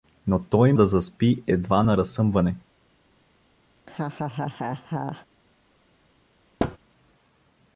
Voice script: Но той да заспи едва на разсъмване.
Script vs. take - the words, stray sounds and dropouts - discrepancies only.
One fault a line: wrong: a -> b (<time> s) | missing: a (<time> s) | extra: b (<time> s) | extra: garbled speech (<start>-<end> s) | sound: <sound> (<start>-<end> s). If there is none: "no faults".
sound: laugh (3.8-5.3 s)
sound: thud (6.6-6.8 s)